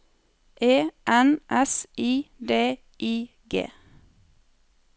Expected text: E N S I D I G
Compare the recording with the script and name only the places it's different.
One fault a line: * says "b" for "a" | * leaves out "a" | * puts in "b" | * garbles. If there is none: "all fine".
all fine